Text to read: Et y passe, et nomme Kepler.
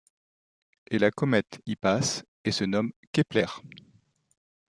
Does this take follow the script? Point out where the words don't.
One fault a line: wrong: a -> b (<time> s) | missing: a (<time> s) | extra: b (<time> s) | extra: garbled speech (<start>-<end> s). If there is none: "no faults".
extra: la comète (1.0 s)
extra: se (2.5 s)